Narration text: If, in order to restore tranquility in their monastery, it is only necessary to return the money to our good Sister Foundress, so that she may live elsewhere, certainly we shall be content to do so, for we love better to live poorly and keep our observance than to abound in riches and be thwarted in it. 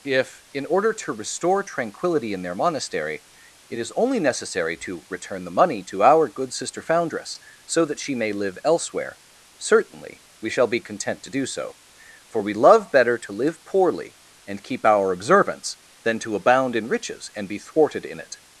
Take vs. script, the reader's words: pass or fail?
pass